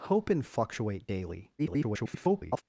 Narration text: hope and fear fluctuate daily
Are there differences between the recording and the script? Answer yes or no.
yes